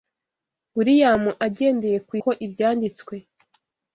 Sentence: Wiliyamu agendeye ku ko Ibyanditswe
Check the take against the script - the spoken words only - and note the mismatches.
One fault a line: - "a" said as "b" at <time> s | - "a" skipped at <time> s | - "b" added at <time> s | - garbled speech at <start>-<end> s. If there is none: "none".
none